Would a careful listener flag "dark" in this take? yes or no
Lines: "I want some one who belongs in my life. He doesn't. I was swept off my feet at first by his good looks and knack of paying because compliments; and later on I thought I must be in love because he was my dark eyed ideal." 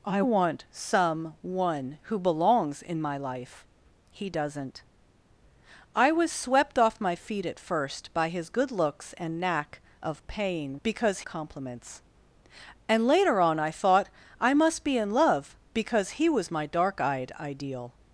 no